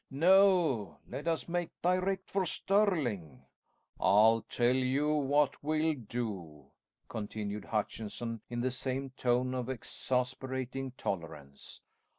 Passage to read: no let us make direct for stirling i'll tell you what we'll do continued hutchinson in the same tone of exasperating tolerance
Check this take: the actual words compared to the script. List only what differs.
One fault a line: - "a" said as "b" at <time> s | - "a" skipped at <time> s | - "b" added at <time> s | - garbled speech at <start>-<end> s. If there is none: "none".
none